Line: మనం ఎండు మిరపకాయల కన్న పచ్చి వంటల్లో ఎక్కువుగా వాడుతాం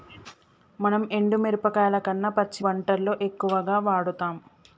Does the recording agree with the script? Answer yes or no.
yes